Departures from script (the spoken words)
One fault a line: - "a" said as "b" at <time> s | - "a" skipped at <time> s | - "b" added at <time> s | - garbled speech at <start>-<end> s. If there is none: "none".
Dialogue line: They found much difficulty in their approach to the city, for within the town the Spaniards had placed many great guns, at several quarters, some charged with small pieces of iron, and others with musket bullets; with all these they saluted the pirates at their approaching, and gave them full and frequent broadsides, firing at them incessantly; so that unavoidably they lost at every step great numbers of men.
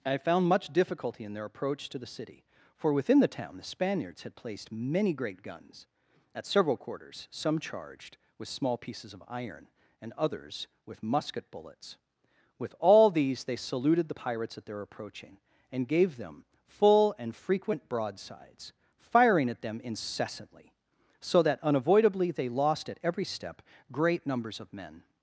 - "They" said as "I" at 0.1 s